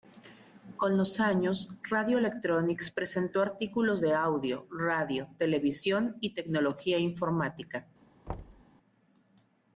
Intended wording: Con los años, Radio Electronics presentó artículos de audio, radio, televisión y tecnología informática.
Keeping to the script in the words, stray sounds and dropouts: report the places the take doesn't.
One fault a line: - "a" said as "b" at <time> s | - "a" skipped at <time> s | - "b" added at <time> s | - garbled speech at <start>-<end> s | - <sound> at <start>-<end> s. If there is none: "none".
- thud at 8.3-8.6 s